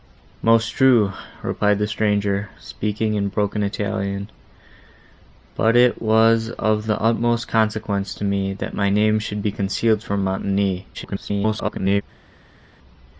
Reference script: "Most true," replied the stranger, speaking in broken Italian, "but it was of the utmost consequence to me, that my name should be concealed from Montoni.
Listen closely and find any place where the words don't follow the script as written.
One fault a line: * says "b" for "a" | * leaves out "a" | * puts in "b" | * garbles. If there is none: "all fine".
* garbles